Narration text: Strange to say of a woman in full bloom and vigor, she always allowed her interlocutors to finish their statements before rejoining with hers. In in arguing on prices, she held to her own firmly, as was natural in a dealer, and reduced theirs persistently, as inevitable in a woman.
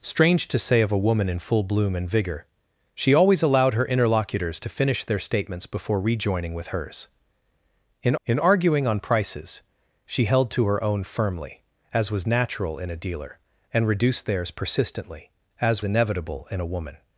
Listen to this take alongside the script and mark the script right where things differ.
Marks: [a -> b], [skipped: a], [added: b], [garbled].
Strange to say of a woman in full bloom and vigor, she always allowed her interlocutors to finish their statements before rejoining with hers. In in arguing on prices, she held to her own firmly, as was natural in a dealer, and reduced theirs persistently, as inevitable in a woman.